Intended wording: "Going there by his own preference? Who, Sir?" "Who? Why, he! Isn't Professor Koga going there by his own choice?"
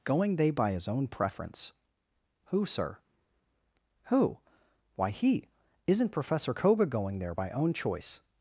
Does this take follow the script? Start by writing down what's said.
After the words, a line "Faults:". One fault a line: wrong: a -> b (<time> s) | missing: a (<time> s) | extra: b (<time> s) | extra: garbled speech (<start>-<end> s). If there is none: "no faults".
"Going they by his own preference? Who, Sir?" "Who? Why, he! Isn't Professor Koga going there by own choice?"
Faults:
wrong: there -> they (0.3 s)
missing: his (7.5 s)